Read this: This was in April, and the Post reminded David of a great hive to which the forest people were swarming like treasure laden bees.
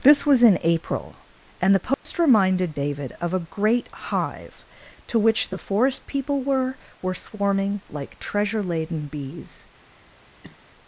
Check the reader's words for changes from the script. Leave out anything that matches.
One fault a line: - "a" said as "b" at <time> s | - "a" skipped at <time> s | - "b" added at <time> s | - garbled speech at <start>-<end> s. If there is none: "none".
- "were" added at 7.0 s